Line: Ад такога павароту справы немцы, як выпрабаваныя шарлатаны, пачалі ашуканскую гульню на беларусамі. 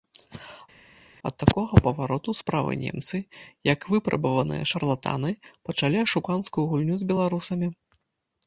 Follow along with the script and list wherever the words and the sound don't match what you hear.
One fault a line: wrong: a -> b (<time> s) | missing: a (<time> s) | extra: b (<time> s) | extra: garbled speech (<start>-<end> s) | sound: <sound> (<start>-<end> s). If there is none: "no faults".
wrong: на -> з (7.1 s)